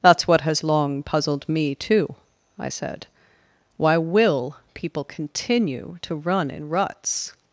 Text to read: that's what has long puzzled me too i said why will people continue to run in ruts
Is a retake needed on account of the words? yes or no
no